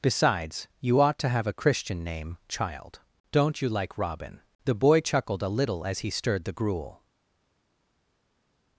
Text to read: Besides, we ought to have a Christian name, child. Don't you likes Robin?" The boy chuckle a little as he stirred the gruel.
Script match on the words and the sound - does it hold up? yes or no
no